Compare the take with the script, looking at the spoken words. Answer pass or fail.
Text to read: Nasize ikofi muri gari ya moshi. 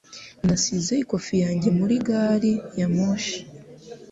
fail